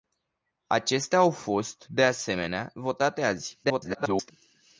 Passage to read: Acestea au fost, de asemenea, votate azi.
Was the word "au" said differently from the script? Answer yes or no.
no